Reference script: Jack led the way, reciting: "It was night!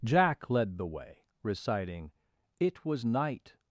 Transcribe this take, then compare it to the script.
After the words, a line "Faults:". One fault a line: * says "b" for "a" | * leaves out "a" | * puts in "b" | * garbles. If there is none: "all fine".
Jack led the way, reciting: "It was night!
Faults:
all fine